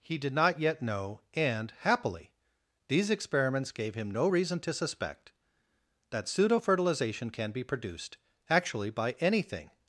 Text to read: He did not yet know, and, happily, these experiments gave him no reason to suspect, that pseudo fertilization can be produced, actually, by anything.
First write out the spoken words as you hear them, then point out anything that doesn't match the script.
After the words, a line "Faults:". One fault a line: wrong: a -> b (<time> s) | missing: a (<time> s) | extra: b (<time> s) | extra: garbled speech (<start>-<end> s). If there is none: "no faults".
He did not yet know, and, happily, these experiments gave him no reason to suspect, that pseudo fertilization can be produced, actually, by anything.
Faults:
no faults